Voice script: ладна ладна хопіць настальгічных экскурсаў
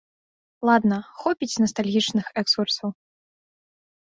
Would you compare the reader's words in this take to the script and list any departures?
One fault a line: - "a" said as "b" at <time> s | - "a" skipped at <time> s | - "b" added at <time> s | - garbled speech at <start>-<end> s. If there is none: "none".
- "ладна" skipped at 1.0 s